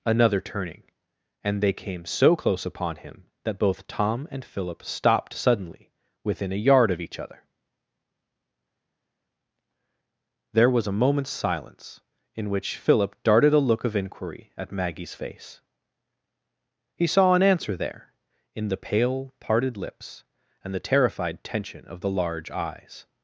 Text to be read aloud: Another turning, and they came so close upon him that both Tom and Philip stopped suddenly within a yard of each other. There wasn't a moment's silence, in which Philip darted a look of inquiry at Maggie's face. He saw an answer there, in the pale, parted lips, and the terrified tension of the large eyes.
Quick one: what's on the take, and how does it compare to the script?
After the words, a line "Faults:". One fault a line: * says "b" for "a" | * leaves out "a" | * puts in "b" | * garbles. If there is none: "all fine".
Another turning, and they came so close upon him that both Tom and Philip stopped suddenly within a yard of each other. There was a moment's silence, in which Philip darted a look of inquiry at Maggie's face. He saw an answer there, in the pale, parted lips, and the terrified tension of the large eyes.
Faults:
* says "was" for "wasn't"